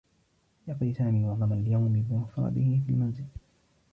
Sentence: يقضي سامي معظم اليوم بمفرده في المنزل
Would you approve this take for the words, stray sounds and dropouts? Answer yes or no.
yes